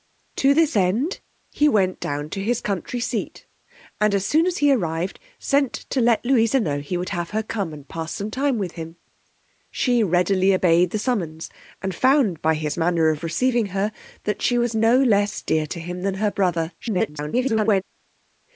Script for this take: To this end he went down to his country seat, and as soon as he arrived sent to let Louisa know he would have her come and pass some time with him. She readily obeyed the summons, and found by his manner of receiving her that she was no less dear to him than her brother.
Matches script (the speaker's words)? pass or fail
fail